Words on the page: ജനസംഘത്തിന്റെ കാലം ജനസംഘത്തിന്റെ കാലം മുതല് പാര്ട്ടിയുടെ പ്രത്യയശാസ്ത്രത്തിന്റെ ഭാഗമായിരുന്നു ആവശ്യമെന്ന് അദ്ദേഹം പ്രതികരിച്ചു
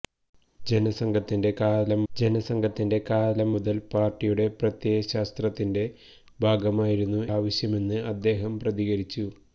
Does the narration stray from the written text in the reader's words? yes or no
no